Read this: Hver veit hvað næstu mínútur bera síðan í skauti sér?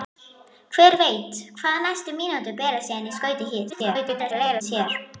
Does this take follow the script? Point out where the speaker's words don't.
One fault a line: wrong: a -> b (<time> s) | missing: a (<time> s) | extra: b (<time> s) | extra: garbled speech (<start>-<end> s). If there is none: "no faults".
extra: garbled speech (3.7-4.6 s)